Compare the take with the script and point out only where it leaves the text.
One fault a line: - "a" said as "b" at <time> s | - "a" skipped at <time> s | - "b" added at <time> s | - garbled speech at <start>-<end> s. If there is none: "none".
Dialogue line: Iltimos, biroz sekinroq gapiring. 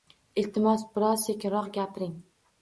none